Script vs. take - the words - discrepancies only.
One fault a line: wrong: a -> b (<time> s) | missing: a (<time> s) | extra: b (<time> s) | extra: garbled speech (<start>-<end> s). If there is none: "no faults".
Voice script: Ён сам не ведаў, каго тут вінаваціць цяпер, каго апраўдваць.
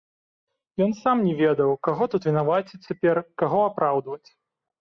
no faults